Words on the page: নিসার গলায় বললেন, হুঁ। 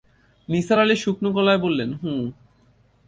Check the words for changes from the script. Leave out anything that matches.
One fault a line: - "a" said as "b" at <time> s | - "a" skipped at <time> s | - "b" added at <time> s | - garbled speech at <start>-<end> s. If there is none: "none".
- "আলি শুকনো" added at 0.8 s